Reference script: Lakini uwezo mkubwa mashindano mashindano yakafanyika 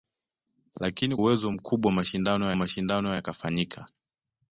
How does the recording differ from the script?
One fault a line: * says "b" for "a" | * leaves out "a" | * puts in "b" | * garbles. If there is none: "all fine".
all fine